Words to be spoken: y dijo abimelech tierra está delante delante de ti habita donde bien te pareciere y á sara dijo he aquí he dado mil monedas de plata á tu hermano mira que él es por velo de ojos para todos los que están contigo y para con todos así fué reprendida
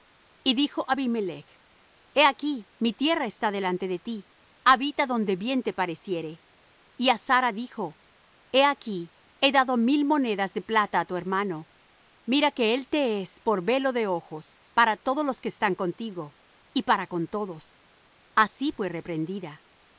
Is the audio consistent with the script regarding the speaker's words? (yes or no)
no